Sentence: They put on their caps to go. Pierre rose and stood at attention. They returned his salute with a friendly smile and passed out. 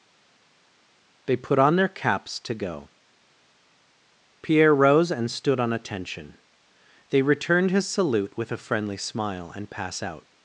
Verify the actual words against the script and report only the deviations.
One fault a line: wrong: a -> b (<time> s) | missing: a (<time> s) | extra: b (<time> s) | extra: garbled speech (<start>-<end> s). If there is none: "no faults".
wrong: at -> on (5.6 s)
wrong: passed -> pass (9.7 s)